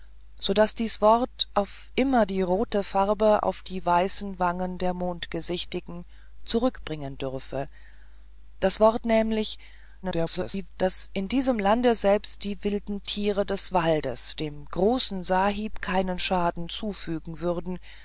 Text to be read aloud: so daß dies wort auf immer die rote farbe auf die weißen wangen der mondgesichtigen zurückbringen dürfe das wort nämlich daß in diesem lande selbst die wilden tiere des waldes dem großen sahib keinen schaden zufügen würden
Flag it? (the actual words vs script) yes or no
yes